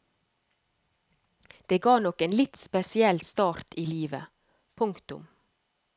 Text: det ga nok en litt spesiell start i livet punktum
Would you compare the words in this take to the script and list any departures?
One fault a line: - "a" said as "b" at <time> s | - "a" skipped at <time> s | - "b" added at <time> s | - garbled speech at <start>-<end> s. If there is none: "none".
none